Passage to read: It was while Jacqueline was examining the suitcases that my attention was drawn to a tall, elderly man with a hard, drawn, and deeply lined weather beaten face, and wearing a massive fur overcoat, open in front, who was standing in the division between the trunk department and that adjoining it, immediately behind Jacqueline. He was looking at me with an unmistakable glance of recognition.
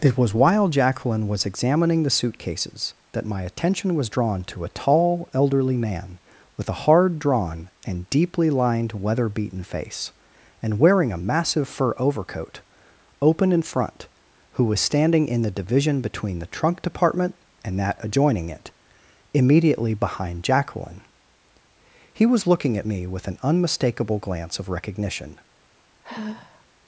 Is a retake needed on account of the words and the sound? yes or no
yes